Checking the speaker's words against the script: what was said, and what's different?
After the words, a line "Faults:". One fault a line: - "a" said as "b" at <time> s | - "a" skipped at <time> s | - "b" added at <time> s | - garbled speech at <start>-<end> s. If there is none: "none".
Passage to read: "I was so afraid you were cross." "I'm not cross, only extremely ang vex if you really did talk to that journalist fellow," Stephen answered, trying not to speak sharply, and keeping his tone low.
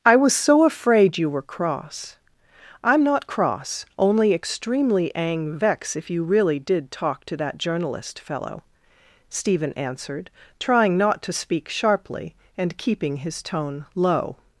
"I was so afraid you were cross." "I'm not cross, only extremely ang vex if you really did talk to that journalist fellow," Stephen answered, trying not to speak sharply, and keeping his tone low.
Faults:
none